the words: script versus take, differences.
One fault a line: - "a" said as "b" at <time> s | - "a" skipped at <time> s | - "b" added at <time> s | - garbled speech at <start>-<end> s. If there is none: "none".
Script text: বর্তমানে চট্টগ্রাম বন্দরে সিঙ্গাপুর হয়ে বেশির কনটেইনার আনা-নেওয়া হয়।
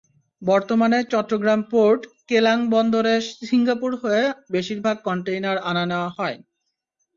- "পোর্ট কেলাং" added at 1.7 s
- "ভাগ" added at 4.8 s